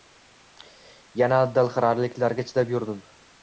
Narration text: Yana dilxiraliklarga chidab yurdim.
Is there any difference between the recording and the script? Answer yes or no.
no